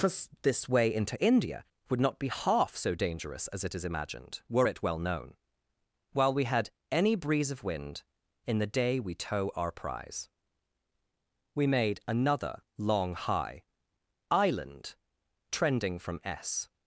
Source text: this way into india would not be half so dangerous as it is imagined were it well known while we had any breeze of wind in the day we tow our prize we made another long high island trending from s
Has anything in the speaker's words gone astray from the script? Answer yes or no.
no